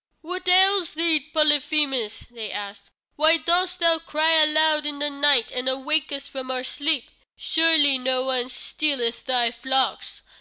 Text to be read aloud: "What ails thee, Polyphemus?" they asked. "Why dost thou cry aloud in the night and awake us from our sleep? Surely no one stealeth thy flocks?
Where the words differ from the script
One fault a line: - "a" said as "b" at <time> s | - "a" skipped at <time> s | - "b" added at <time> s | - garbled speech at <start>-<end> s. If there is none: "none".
none